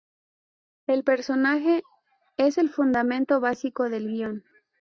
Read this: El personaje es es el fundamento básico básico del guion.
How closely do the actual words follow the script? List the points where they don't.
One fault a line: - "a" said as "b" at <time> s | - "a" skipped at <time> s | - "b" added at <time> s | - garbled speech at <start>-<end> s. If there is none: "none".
- "es" skipped at 2.6 s
- "básico" skipped at 3.9 s